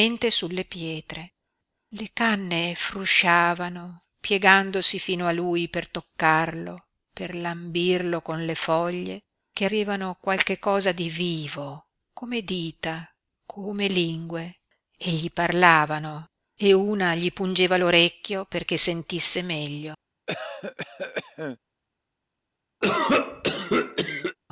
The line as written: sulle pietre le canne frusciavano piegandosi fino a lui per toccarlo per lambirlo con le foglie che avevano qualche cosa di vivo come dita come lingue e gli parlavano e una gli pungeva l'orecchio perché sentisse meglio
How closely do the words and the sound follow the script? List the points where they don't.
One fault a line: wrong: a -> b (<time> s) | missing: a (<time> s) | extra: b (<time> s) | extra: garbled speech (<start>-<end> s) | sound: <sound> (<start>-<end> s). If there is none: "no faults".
sound: cough (20.3-21.6 s)
sound: cough (22.8-24.4 s)